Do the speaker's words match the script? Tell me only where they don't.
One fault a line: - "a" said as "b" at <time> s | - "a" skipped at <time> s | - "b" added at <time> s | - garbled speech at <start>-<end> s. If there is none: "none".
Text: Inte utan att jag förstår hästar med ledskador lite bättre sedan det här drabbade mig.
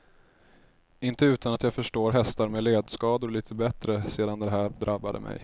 none